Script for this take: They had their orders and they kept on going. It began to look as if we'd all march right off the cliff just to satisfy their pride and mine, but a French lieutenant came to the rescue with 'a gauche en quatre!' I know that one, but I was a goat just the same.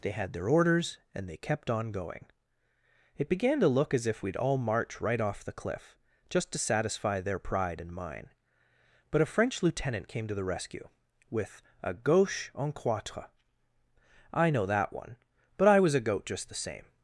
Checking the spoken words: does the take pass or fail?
pass